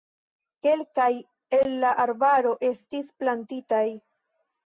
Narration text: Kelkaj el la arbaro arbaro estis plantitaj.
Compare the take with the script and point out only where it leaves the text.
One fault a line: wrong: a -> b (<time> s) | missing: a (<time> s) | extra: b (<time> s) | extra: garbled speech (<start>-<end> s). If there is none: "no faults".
missing: arbaro (2.5 s)